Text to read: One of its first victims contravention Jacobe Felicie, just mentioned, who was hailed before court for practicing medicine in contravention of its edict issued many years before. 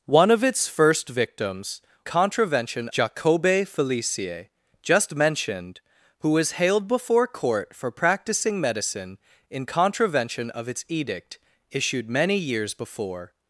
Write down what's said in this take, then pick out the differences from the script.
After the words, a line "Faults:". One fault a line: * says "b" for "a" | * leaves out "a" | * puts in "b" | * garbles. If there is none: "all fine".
One of its first victims contravention Jacobe Felicie, just mentioned, who was hailed before court for practicing medicine in contravention of its edict issued many years before.
Faults:
all fine